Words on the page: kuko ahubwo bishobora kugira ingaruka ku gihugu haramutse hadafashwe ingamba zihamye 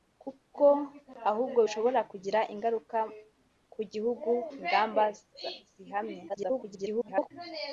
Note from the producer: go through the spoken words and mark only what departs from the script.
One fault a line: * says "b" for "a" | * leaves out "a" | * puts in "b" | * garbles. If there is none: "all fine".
* leaves out "haramutse hadafashwe"
* garbles